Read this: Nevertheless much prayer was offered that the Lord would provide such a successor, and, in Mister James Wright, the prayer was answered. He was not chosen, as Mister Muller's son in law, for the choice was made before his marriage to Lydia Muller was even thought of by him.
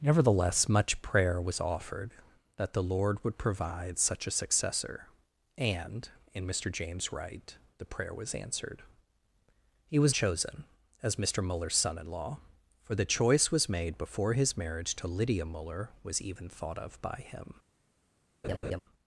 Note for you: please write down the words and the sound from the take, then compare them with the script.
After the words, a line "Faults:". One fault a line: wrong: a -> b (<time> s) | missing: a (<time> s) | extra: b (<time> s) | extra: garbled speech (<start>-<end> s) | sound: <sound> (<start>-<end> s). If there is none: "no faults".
Nevertheless much prayer was offered that the Lord would provide such a successor, and, in Mister James Wright, the prayer was answered. He was chosen, as Mister Muller's son in law, for the choice was made before his marriage to Lydia Muller was even thought of by him.
Faults:
missing: not (10.2 s)
sound: laugh (18.4-18.8 s)